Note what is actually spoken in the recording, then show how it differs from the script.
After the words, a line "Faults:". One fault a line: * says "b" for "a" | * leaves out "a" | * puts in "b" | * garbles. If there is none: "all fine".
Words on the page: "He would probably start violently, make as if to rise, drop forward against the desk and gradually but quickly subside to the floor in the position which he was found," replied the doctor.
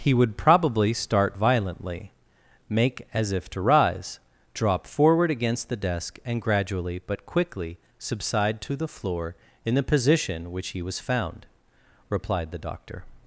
"He would probably start violently, make as if to rise, drop forward against the desk and gradually but quickly subside to the floor in the position which he was found," replied the doctor.
Faults:
all fine